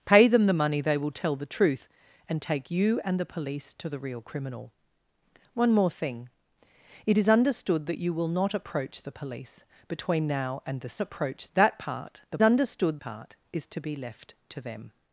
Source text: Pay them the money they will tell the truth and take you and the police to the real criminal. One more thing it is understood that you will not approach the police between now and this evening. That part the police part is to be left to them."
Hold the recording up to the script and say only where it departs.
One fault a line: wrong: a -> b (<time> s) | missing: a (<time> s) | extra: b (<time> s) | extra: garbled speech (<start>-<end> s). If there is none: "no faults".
wrong: evening -> approach (11.0 s)
wrong: police -> understood (12.4 s)